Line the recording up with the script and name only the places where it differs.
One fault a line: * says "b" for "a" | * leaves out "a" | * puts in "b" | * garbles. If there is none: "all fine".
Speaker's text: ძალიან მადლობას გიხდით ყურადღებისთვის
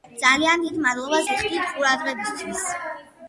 * puts in "დიდ"